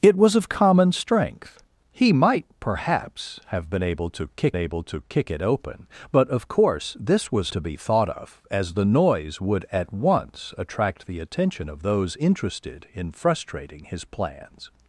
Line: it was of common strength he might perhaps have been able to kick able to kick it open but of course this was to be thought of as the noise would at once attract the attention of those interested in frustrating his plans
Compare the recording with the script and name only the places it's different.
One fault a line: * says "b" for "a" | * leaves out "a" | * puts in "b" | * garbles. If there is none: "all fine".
all fine